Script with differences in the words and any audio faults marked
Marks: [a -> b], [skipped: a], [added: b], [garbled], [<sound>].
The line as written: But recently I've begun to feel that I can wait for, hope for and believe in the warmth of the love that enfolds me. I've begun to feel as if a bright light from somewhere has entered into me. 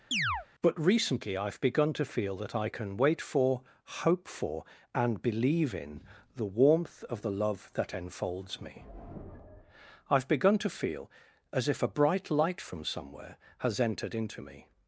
[chirp] But recently I've begun to feel that I can wait for, hope for and believe in the warmth of the love that enfolds me. I've begun to feel as if a bright light from somewhere has entered into me.